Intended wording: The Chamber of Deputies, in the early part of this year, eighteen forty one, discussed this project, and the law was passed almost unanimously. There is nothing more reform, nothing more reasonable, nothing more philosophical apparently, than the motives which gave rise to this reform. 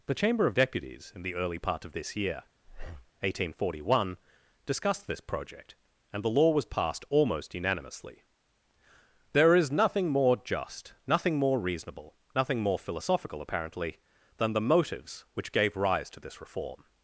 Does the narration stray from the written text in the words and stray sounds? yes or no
yes